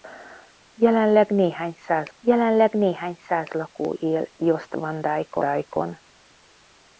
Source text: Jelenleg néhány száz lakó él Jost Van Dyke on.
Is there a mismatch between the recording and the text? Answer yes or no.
yes